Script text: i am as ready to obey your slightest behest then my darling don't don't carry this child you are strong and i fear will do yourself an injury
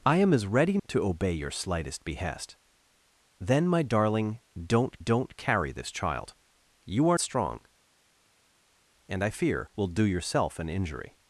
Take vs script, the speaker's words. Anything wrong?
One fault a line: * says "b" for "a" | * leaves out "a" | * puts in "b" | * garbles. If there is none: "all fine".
all fine